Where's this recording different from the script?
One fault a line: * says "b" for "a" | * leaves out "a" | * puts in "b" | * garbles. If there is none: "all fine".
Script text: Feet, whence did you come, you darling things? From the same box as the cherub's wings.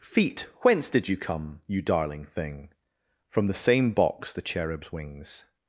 * says "thing" for "things"
* leaves out "as"